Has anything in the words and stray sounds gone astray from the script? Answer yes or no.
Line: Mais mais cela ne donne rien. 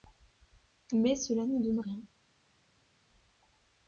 yes